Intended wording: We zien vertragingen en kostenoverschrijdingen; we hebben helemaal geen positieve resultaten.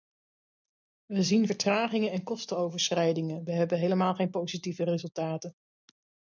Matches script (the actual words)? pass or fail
pass